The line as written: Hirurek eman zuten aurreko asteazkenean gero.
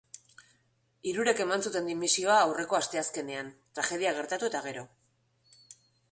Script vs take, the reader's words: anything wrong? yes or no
yes